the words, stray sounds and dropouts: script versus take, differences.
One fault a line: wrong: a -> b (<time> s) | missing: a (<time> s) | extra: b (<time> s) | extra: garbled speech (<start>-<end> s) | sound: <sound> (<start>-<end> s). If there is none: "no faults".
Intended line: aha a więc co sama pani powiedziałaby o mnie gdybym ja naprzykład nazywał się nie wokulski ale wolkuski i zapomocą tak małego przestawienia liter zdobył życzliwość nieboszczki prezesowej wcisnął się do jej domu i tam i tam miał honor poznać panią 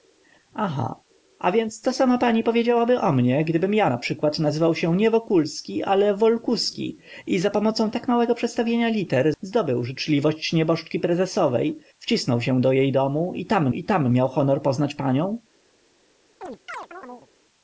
sound: chirp (16.4-17.3 s)